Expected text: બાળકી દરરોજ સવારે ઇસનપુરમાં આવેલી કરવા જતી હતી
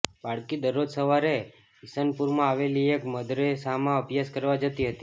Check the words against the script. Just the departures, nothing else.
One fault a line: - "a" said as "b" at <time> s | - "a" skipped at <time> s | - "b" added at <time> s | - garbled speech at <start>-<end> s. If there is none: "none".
- "એક મદરેસામાં અભ્યાસ" added at 3.0 s